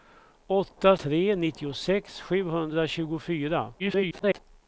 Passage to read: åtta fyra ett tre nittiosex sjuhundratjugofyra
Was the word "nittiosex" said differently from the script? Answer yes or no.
no